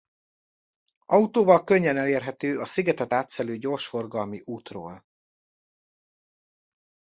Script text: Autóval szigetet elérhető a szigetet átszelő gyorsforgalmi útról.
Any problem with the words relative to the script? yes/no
yes